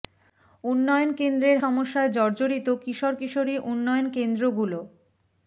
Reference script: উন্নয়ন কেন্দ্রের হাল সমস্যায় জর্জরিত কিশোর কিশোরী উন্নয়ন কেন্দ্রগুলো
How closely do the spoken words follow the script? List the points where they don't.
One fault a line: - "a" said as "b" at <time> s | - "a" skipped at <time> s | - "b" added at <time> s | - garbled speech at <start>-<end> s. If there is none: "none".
- "হাল" skipped at 1.6 s